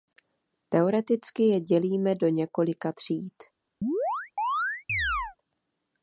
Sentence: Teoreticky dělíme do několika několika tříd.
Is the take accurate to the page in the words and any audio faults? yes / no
no